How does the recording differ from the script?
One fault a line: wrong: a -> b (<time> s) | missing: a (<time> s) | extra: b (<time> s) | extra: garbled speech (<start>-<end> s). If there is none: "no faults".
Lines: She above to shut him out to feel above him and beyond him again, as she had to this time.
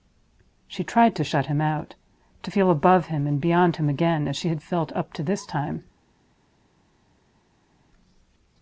wrong: above -> tried (0.8 s)
extra: felt up (4.6 s)